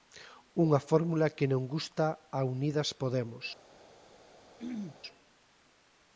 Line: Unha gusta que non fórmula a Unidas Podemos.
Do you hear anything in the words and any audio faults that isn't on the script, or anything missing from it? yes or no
yes